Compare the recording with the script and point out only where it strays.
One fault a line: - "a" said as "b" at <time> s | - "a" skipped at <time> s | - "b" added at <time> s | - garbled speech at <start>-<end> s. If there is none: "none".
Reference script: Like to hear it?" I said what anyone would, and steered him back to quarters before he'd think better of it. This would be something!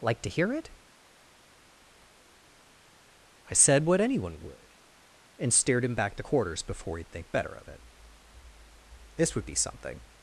none